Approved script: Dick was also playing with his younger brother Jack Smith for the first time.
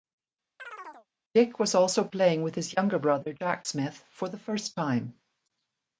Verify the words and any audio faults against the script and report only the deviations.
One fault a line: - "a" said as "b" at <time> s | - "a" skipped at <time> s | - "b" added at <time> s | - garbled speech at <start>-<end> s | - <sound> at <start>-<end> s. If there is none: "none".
- chirp at 0.6-1.1 s